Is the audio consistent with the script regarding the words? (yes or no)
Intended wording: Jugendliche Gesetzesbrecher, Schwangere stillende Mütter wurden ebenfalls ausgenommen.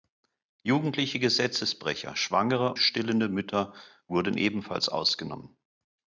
yes